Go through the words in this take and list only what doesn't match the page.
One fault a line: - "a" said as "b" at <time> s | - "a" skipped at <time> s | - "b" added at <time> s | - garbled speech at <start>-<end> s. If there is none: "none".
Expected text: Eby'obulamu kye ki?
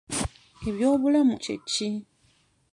none